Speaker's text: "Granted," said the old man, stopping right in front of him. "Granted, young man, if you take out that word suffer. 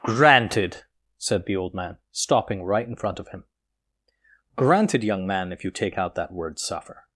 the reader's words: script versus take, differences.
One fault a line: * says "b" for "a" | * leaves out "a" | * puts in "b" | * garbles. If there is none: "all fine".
all fine